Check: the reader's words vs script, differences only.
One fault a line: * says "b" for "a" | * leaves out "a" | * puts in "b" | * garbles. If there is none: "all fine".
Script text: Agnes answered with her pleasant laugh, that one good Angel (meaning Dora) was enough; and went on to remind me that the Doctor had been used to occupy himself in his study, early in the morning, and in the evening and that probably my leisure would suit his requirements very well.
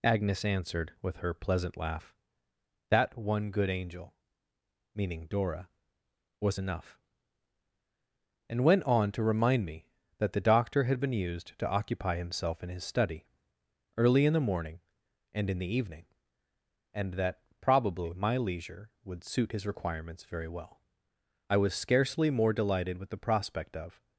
* puts in "I was scarcely more delighted with the prospect of"